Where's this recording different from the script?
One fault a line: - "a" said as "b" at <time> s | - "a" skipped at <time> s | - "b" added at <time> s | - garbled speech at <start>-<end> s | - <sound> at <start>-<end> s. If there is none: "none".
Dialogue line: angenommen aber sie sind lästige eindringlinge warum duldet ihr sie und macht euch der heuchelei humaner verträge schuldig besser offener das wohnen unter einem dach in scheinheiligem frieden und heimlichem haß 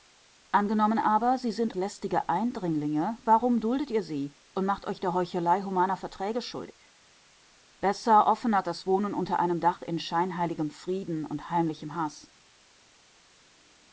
none